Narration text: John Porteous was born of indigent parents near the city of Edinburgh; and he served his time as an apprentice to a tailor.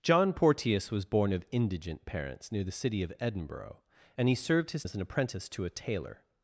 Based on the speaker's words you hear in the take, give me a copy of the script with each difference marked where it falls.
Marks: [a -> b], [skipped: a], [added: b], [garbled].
John Porteous was born of indigent parents near the city of Edinburgh; and he served his [skipped: time] as an apprentice to a tailor.